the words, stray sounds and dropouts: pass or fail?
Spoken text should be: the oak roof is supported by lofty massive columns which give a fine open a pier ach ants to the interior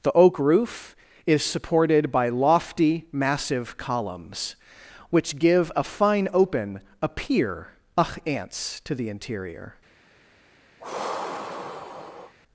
fail